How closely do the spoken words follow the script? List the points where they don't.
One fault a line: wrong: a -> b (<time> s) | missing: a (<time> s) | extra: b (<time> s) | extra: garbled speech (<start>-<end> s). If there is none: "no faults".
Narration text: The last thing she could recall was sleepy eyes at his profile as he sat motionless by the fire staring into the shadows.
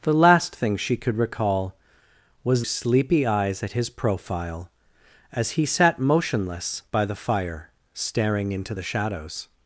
no faults